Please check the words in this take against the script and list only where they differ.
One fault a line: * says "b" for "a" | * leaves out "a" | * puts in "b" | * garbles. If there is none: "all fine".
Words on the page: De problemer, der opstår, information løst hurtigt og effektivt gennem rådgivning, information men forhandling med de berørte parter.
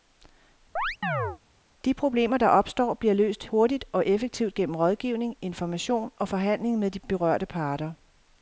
* says "bliver" for "information"
* says "og" for "men"